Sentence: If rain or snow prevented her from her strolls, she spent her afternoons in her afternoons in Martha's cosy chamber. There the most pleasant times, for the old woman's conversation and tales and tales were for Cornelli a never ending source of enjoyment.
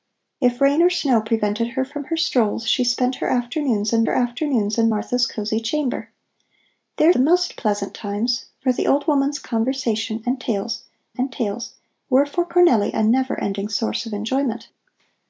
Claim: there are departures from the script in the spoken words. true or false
false